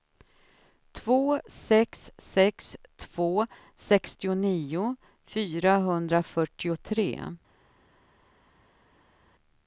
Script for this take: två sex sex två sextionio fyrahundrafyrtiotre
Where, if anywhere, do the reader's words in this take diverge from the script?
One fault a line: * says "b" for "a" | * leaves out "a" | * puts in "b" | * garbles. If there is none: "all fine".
all fine